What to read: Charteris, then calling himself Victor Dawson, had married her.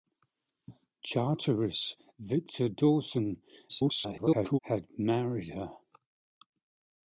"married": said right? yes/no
yes